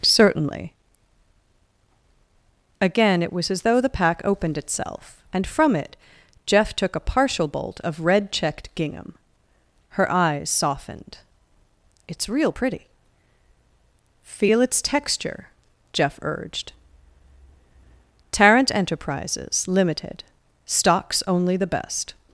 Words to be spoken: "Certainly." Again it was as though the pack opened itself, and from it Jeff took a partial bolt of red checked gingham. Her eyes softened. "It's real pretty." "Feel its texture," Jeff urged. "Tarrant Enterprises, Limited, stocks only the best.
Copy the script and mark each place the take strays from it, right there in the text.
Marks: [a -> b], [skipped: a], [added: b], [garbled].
"Certainly." Again it was as though the pack opened itself, and from it Jeff took a partial bolt of red checked gingham. Her eyes softened. "It's real pretty." "Feel its texture," Jeff urged. "Tarrant Enterprises, Limited, stocks only the best.